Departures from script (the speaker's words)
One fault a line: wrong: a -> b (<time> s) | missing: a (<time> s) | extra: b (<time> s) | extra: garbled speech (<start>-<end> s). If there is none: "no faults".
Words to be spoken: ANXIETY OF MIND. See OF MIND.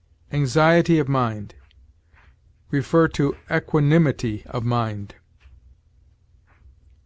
extra: EQUANIMITY (3.5 s)